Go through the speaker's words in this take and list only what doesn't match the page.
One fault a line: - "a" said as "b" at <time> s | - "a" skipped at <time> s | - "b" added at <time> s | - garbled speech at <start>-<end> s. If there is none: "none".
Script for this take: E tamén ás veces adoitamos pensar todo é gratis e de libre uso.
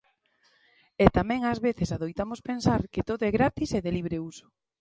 - "que" added at 2.9 s